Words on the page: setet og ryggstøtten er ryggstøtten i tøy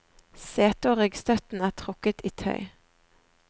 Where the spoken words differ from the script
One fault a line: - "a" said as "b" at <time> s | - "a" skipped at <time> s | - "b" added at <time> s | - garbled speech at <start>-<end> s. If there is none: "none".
- "ryggstøtten" said as "trukket" at 1.8 s